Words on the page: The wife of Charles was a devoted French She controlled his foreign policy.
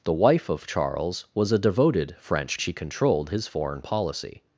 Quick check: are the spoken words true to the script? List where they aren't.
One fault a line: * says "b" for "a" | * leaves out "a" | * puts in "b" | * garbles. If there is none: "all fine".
all fine